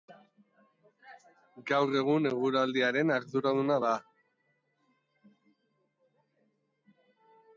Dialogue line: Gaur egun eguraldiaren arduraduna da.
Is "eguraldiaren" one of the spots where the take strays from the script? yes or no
no